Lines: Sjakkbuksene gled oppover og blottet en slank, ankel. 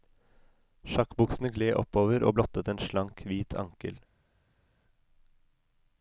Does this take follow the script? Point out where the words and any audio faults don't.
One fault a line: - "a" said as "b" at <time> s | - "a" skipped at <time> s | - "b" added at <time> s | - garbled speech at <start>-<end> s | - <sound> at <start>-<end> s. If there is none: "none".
- "hvit" added at 3.3 s